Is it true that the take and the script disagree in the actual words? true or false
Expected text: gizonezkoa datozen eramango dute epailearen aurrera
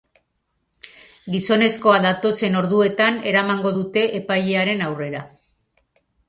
true